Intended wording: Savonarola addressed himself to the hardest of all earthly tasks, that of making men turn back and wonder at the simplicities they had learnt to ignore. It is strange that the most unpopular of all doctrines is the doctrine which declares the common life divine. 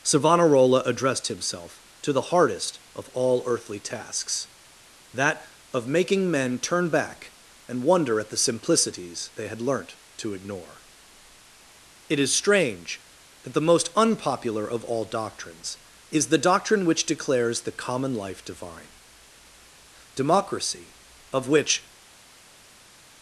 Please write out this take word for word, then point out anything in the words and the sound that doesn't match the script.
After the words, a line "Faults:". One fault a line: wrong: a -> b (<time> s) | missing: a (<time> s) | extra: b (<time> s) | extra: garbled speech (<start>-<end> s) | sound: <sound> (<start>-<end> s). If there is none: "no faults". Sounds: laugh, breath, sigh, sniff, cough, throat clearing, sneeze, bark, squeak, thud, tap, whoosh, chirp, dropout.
Savonarola addressed himself to the hardest of all earthly tasks, that of making men turn back and wonder at the simplicities they had learnt to ignore. It is strange that the most unpopular of all doctrines is the doctrine which declares the common life divine. Democracy, of which
Faults:
extra: Democracy of which (20.1 s)